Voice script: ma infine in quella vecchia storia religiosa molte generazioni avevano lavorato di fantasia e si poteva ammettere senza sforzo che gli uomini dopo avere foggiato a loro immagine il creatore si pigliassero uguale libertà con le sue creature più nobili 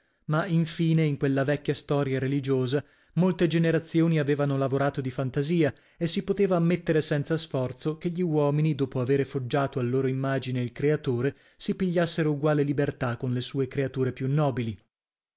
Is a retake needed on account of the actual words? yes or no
no